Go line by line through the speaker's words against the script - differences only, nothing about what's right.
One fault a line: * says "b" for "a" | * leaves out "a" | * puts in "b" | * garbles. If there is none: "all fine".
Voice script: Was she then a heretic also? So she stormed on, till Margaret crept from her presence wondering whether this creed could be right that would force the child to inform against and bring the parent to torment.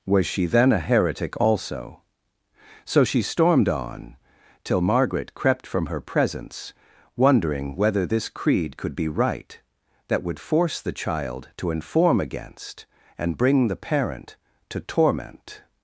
all fine